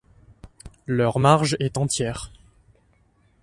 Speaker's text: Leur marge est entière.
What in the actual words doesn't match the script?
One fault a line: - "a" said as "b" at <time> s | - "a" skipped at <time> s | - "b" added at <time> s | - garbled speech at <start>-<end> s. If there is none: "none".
none